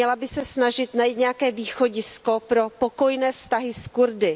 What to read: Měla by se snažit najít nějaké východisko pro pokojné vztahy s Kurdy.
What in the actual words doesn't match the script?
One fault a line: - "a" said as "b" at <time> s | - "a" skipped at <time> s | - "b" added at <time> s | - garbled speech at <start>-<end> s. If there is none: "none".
none